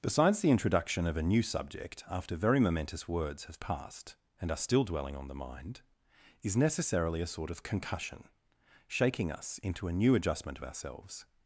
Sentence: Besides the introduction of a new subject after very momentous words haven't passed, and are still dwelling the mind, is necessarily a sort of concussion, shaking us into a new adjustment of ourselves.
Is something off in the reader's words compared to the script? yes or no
yes